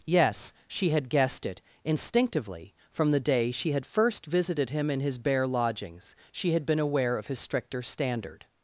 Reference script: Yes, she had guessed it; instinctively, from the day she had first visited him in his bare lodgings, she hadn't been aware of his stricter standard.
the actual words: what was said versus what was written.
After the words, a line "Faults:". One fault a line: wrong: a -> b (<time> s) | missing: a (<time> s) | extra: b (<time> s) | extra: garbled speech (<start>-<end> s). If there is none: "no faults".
Yes, she had guessed it; instinctively, from the day she had first visited him in his bare lodgings, she had been aware of his stricter standard.
Faults:
wrong: hadn't -> had (6.5 s)